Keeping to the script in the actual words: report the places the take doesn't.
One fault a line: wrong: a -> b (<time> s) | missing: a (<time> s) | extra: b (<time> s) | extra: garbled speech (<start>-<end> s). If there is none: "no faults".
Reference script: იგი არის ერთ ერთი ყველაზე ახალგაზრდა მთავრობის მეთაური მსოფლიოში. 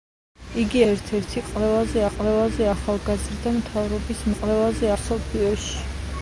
missing: არის (0.8 s)
extra: ყველაზე (2.1 s)
wrong: მეთაური -> ყველაზე (4.4 s)